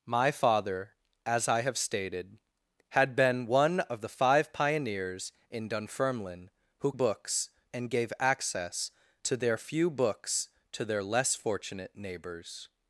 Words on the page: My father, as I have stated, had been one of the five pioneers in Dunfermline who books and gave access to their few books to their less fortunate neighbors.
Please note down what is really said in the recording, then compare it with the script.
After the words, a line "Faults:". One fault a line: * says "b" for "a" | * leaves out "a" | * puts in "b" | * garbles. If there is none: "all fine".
My father, as I have stated, had been one of the five pioneers in Dunfermline who books and gave access to their few books to their less fortunate neighbors.
Faults:
all fine